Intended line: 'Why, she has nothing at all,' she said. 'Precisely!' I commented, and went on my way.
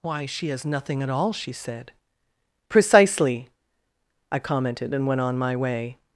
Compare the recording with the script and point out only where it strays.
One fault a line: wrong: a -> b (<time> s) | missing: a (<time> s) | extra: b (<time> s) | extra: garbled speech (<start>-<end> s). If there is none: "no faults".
no faults